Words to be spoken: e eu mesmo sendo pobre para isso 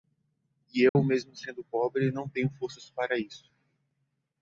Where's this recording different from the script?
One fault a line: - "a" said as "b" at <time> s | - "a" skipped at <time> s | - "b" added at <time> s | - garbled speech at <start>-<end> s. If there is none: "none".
- "não tenho forças" added at 2.1 s